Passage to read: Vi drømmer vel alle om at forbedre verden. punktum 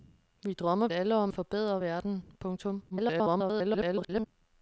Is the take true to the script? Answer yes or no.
no